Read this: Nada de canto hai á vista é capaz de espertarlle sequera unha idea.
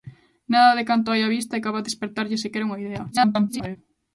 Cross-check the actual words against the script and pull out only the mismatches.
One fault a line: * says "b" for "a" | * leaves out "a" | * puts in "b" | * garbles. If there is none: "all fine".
* garbles